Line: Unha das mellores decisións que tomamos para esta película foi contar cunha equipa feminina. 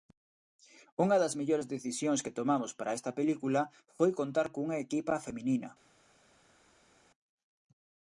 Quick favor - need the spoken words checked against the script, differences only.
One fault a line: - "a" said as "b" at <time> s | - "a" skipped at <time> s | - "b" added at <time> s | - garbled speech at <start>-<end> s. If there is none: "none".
none